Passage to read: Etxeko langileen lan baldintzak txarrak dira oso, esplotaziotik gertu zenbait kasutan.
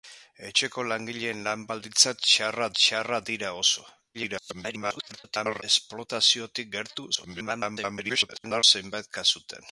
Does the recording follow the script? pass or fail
fail